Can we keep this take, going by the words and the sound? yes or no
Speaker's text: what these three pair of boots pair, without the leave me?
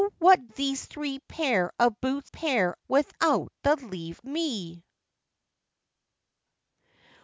yes